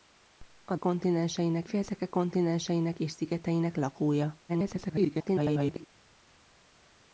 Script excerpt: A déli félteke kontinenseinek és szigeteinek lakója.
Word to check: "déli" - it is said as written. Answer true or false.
false